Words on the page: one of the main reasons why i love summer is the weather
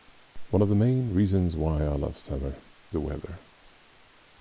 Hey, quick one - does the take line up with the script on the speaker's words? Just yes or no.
no